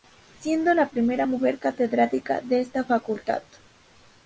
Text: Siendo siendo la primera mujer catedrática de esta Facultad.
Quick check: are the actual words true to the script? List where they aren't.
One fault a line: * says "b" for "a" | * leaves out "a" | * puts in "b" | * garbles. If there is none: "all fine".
* leaves out "siendo"